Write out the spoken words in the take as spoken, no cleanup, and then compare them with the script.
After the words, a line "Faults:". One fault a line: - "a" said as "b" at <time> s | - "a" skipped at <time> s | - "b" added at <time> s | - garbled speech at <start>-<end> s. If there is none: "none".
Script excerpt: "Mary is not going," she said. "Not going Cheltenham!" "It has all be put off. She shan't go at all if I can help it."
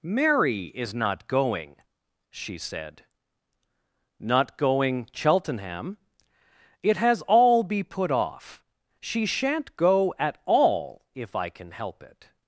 "Mary is not going," she said. "Not going Cheltenham!" "It has all be put off. She shan't go at all if I can help it."
Faults:
none